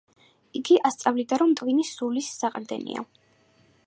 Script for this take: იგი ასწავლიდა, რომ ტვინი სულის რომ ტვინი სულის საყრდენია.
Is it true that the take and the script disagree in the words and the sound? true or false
true